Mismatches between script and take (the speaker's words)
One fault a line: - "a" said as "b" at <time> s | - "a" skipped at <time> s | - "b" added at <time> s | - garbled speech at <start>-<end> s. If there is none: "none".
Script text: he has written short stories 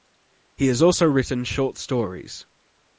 - "also" added at 0.8 s